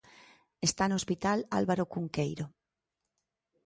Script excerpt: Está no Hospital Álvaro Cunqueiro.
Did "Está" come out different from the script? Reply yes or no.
no